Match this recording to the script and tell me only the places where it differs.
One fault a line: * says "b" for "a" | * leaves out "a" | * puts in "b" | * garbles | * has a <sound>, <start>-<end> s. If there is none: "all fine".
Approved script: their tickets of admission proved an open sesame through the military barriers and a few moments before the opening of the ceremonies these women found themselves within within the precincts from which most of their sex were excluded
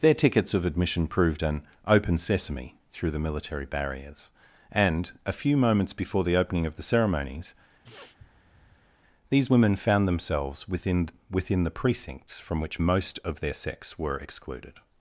* has a sniff, 7.8-8.9 s